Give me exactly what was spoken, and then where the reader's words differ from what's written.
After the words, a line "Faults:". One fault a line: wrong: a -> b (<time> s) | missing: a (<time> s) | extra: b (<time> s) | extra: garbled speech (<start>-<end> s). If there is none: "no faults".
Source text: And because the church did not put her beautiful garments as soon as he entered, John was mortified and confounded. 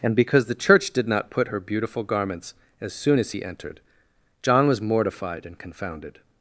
And because the church did not put her beautiful garments as soon as he entered, John was mortified and confounded.
Faults:
no faults